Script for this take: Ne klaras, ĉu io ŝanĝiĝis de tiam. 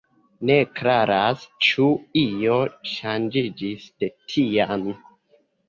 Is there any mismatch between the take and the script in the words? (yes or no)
no